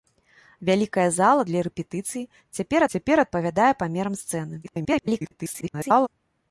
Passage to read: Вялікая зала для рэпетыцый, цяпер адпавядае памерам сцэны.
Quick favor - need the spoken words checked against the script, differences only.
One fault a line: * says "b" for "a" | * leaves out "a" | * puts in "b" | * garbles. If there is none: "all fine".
* puts in "цяпер"
* garbles